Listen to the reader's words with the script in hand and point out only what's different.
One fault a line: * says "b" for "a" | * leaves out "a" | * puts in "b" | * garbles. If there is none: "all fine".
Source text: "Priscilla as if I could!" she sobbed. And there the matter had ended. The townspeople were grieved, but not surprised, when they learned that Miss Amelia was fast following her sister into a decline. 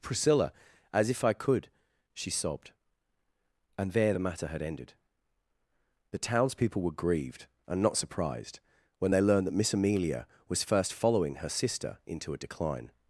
* says "and" for "but"
* says "first" for "fast"